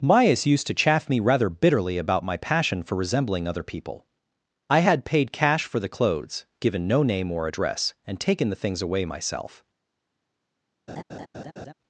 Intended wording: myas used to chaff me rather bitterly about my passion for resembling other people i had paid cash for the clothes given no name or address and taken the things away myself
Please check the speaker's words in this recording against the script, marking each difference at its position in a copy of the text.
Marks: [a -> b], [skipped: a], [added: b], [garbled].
myas used to chaff me rather bitterly about my passion for resembling other people i had paid cash for the clothes given no name or address and taken the things away myself